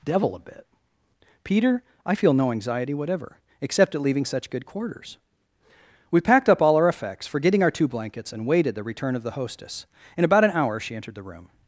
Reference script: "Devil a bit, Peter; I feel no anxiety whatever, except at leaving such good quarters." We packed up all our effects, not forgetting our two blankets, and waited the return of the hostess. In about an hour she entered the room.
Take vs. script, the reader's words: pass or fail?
fail